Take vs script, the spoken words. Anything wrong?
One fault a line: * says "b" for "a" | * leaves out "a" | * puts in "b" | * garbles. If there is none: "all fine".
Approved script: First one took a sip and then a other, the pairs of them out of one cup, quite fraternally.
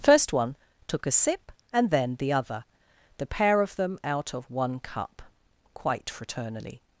* says "the" for "a"
* says "pair" for "pairs"